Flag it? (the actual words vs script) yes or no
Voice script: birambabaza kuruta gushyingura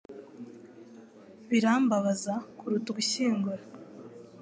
no